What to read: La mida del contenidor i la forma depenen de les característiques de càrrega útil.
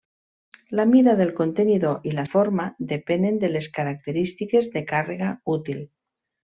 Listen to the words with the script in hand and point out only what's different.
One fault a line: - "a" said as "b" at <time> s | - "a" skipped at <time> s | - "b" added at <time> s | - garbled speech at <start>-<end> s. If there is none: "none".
none